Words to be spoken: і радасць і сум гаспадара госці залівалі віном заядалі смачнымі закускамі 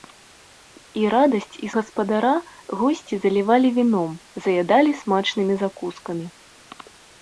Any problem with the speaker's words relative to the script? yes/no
yes